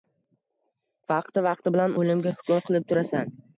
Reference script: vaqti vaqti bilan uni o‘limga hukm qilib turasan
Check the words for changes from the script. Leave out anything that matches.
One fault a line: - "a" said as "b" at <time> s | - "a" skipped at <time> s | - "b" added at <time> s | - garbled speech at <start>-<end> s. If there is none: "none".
- "uni" skipped at 2.0 s